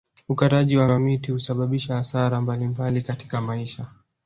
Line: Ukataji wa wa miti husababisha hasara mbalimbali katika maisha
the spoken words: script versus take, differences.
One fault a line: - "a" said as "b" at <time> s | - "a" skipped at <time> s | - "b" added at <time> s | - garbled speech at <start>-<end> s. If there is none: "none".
none